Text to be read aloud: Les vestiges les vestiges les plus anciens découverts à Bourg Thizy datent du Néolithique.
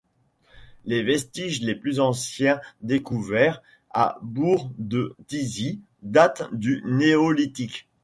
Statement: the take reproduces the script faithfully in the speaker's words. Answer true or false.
false